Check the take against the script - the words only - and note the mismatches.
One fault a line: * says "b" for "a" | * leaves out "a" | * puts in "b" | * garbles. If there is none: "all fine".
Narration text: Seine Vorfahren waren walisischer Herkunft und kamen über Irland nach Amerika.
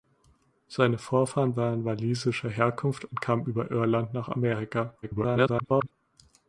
* garbles